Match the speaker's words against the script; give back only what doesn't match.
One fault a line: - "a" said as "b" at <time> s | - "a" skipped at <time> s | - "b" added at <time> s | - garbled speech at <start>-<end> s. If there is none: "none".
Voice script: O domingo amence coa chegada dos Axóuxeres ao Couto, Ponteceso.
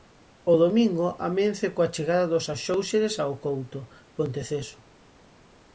none